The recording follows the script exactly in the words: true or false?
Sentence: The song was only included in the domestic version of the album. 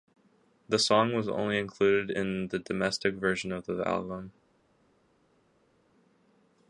true